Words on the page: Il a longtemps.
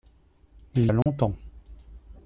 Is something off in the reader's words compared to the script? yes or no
no